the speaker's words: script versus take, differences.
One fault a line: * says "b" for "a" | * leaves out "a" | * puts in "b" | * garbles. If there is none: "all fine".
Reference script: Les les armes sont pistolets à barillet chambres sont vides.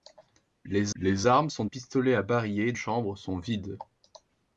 all fine